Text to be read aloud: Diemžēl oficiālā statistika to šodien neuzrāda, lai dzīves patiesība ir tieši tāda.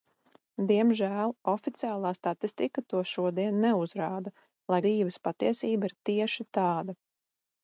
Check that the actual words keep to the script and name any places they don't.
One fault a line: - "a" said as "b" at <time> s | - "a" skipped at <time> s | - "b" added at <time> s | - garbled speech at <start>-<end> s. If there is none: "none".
none